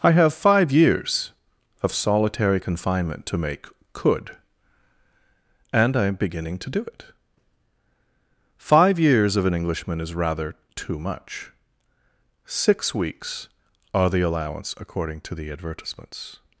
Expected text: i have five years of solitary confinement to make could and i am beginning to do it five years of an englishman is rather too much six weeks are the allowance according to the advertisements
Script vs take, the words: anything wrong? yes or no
no